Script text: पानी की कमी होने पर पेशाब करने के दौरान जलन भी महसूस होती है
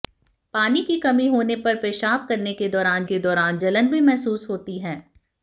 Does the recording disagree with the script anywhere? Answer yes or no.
yes